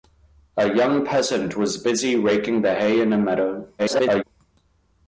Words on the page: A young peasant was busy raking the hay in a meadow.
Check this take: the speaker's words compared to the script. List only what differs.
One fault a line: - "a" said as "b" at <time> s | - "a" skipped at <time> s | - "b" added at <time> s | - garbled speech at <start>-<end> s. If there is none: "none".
- garbled speech at 3.8-4.2 s